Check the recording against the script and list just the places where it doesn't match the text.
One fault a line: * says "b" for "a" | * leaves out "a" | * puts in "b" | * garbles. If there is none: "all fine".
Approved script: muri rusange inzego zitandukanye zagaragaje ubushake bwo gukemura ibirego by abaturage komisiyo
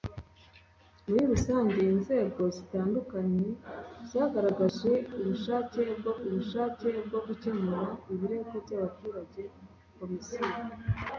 * puts in "ubushake bwo"